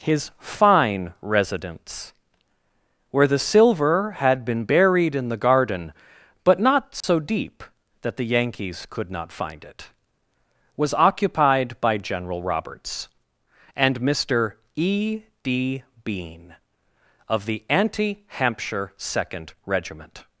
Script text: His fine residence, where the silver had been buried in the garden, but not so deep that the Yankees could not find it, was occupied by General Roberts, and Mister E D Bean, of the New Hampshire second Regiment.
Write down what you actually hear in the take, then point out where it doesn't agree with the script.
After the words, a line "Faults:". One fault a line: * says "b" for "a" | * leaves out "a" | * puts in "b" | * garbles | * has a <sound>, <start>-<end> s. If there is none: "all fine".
His fine residence, where the silver had been buried in the garden, but not so deep that the Yankees could not find it, was occupied by General Roberts, and Mister E D Bean, of the Anti Hampshire second Regiment.
Faults:
* has a dropout, 7.0-7.0 s
* says "Anti" for "New"